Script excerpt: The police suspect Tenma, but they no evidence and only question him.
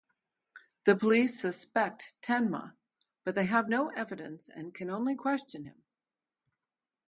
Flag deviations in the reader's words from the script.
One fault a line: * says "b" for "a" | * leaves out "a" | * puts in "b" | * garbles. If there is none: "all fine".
* puts in "have"
* puts in "can"